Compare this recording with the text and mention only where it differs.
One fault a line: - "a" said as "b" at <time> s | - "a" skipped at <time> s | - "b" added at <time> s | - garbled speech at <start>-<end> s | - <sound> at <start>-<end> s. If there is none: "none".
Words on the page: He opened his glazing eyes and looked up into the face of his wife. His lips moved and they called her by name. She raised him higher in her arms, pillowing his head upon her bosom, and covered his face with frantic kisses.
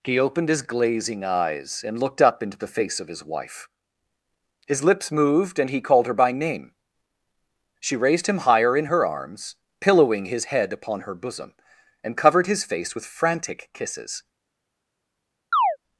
- "they" said as "he" at 5.7 s
- chirp at 15.5-15.8 s